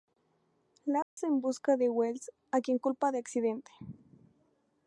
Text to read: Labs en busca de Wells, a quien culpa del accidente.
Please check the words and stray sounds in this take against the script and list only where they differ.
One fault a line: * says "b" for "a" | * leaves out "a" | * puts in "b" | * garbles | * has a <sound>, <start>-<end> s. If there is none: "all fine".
* has a dropout, 1.0-1.2 s